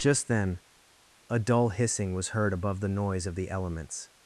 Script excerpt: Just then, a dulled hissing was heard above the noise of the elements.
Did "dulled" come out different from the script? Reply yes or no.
yes